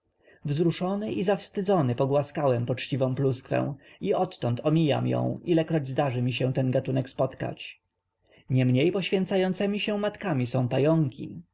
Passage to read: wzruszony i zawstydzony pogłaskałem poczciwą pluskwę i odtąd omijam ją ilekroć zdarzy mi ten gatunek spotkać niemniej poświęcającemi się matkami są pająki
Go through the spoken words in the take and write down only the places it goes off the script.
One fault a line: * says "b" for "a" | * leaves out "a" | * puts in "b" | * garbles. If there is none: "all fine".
* puts in "się"